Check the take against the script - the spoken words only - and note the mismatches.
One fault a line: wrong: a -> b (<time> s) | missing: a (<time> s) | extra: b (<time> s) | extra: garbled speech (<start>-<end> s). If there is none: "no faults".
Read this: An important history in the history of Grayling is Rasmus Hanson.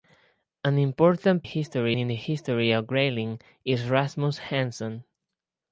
no faults